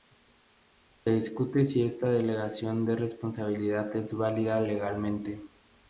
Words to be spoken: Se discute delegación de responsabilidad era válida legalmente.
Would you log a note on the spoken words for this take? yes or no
yes